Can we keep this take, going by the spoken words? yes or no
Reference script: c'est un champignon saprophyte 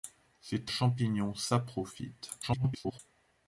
no